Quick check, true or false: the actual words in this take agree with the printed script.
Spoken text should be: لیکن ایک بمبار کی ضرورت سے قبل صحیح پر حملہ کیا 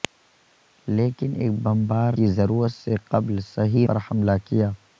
true